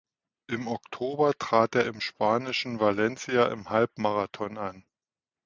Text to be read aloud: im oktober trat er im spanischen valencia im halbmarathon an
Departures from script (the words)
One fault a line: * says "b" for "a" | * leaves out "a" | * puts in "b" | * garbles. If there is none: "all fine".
all fine